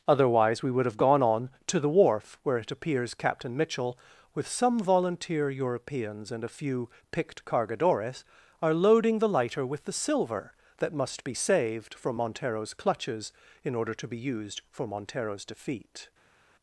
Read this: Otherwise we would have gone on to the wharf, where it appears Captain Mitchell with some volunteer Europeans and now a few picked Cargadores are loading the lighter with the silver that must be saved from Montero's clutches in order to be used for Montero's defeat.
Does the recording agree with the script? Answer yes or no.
no